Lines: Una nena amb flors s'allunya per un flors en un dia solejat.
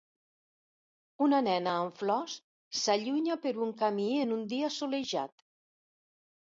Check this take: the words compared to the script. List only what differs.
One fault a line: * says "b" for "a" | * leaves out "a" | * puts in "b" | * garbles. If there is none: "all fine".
* says "camí" for "flors"